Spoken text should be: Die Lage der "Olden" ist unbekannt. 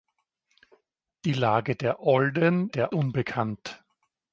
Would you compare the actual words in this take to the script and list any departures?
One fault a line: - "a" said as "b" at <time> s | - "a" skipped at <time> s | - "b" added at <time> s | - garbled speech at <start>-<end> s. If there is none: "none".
- "ist" said as "der" at 2.7 s